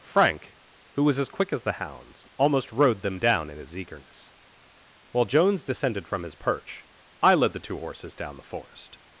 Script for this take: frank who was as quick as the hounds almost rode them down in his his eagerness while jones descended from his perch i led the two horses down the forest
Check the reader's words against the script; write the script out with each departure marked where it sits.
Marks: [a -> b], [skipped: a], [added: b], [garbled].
frank who was as quick as the hounds almost rode them down in his [skipped: his] eagerness while jones descended from his perch i led the two horses down the forest